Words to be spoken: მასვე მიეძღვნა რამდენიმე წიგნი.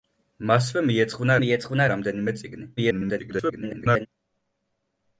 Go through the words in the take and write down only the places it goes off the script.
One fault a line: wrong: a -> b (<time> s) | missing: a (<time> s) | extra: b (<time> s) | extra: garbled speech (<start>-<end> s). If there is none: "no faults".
extra: მიეძღვნა (1.4 s)
extra: garbled speech (2.8-4.1 s)